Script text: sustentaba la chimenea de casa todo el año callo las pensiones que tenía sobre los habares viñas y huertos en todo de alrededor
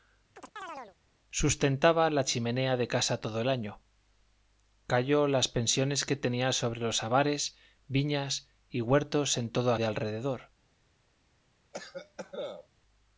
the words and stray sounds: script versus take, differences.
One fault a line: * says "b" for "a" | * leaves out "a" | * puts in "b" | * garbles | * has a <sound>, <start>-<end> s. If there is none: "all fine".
* has a chirp, 0.4-1.0 s
* has a cough, 11.7-12.7 s